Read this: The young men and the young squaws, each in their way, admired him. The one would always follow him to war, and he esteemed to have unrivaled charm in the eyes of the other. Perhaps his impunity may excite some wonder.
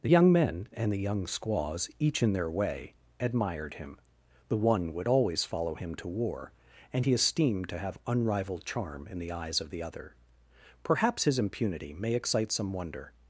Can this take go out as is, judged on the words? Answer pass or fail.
pass